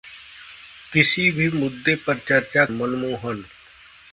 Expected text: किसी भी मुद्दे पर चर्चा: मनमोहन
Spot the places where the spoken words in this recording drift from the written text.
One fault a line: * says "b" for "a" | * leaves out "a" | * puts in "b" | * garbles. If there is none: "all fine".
all fine